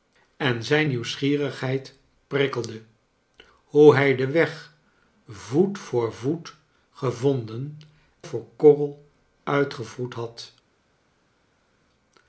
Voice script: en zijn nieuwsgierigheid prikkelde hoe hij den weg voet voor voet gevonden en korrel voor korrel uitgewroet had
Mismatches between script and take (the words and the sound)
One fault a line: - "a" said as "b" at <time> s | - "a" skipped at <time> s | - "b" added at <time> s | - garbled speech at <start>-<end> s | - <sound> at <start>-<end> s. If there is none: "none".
- "en korrel" skipped at 7.8 s